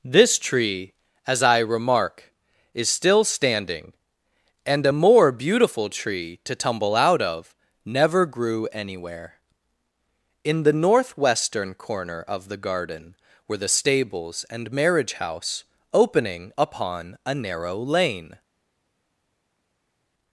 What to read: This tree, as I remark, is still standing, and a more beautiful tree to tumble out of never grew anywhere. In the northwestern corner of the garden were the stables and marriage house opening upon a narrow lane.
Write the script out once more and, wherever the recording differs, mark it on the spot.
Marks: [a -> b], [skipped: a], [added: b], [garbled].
This tree, as I remark, is still standing, and a more beautiful tree to tumble out of never grew anywhere. In the northwestern corner of the garden were the stables and marriage house opening upon a narrow lane.